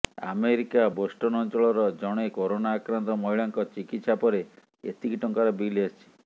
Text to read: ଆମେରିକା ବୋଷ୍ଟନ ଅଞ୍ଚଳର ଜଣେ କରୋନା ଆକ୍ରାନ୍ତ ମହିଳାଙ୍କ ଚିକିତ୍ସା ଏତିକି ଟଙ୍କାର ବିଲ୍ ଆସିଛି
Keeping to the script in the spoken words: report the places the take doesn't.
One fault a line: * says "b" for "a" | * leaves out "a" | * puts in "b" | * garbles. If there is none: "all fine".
* puts in "ପରେ"